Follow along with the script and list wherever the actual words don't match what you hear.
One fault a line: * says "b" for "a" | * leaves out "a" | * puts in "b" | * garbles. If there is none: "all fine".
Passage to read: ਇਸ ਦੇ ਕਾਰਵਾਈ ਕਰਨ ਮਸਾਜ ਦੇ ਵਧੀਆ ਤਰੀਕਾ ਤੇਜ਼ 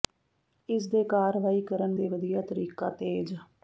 * leaves out "ਮਸਾਜ"